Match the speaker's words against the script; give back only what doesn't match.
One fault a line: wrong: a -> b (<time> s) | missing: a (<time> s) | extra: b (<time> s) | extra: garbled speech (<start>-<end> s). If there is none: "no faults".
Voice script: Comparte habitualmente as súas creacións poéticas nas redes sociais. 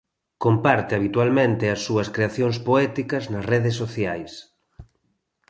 no faults